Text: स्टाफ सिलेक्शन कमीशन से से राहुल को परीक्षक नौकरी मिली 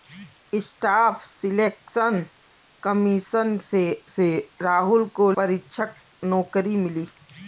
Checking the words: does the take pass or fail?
pass